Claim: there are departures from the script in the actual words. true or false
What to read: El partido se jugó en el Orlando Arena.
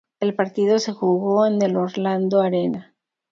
false